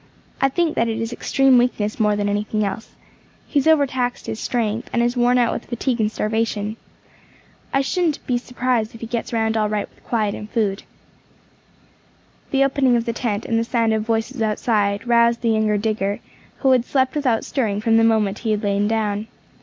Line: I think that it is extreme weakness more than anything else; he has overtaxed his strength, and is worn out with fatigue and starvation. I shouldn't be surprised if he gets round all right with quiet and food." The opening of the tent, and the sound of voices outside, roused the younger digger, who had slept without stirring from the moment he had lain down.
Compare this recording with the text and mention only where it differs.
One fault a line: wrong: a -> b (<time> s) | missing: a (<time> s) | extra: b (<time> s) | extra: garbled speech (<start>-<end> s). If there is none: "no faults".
no faults